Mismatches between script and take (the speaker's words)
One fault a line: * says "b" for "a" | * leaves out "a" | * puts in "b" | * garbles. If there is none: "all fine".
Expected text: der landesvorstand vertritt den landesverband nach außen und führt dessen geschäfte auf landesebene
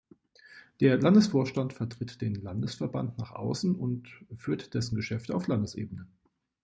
all fine